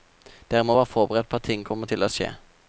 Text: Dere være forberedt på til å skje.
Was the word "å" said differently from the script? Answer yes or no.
no